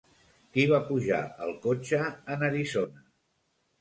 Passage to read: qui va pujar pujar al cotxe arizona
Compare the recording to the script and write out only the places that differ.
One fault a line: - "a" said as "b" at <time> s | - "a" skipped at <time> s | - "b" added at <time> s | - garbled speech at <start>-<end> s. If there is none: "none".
- "pujar" skipped at 1.2 s
- "en" added at 2.4 s